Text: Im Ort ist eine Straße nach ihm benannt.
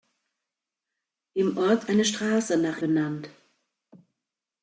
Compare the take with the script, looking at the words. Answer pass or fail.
fail